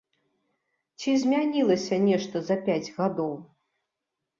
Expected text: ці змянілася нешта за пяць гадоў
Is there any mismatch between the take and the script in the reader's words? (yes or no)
no